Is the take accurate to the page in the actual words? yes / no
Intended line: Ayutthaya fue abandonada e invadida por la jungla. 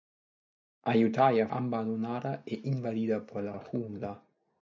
no